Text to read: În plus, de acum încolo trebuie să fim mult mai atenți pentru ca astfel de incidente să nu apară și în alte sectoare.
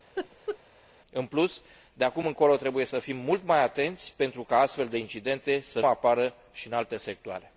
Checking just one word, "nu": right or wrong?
wrong